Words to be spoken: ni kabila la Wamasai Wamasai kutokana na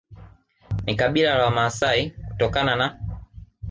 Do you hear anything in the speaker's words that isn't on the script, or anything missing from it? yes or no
yes